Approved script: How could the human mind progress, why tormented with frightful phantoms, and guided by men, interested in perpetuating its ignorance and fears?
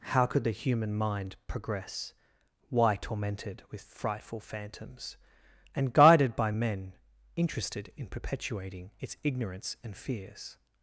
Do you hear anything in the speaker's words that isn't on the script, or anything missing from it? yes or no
no